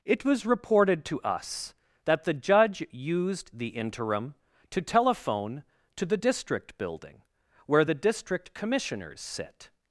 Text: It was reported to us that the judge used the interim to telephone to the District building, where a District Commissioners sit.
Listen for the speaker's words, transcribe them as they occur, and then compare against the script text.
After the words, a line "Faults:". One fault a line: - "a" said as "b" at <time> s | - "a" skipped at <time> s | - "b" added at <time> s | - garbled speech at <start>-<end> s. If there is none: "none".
It was reported to us that the judge used the interim to telephone to the District building, where the District Commissioners sit.
Faults:
- "a" said as "the" at 7.8 s